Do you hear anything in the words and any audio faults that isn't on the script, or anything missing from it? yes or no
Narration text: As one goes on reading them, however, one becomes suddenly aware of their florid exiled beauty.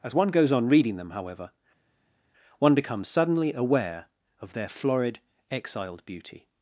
no